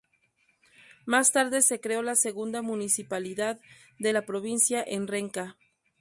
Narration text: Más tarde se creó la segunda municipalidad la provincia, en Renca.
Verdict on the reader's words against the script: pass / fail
fail